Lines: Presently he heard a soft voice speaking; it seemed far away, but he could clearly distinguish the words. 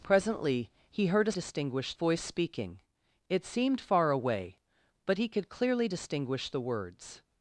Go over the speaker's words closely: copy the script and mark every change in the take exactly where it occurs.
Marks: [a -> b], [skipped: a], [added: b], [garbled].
Presently he heard a [soft -> distinguish] voice speaking; it seemed far away, but he could clearly distinguish the words.